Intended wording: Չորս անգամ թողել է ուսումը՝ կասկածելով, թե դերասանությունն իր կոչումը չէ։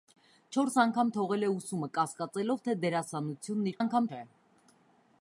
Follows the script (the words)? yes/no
no